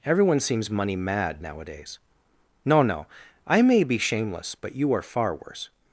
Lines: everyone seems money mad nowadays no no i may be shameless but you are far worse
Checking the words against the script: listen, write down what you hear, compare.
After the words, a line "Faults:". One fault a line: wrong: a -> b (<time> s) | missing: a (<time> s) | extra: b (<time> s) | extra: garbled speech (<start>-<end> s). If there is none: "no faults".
everyone seems money mad nowadays no no i may be shameless but you are far worse
Faults:
no faults